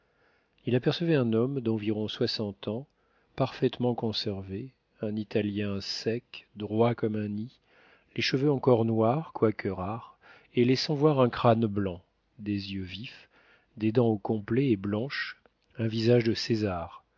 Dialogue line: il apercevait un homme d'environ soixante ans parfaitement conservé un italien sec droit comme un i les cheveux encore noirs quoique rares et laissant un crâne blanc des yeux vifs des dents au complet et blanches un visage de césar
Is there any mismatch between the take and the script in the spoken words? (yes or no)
yes